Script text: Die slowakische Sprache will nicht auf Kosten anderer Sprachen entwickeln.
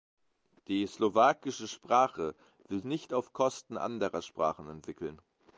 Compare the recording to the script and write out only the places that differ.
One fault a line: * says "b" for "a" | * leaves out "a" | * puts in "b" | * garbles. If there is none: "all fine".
all fine